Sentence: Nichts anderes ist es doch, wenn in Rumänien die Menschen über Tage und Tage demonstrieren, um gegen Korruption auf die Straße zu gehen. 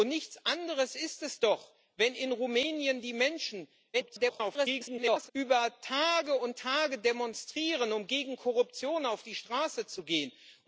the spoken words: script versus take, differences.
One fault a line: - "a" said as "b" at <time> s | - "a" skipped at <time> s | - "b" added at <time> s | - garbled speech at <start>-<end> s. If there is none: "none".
- garbled speech at 3.9-5.3 s